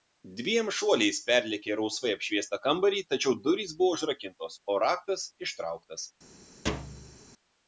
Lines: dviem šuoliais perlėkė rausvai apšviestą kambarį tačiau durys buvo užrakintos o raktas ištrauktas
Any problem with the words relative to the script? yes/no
no